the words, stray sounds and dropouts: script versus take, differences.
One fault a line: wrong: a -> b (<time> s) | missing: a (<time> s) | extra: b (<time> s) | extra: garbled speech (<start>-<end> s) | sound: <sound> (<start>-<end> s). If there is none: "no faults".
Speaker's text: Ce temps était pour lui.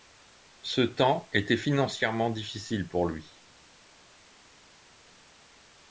extra: financièrement difficile (1.6 s)